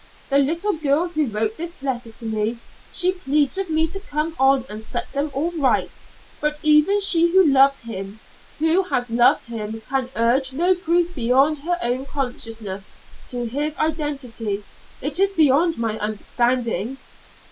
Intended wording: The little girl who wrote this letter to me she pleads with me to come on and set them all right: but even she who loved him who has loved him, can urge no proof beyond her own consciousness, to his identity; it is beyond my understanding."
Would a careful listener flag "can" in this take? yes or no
no